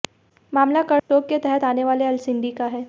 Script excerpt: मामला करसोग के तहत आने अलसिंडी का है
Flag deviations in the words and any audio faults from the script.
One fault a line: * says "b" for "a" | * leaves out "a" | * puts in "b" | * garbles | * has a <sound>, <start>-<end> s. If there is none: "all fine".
* has a dropout, 1.0-1.1 s
* puts in "वाले"